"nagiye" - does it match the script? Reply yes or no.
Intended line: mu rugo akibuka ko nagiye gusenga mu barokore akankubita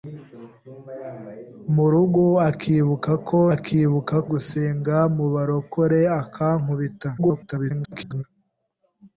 no